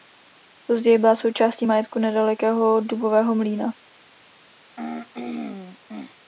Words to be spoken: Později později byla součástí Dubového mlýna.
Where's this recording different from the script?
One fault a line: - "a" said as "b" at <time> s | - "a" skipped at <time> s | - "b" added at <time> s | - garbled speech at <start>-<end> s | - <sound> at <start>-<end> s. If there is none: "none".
- "později" skipped at 1.0 s
- "majetku nedalekého" added at 1.6 s
- throat clearing at 4.8-6.2 s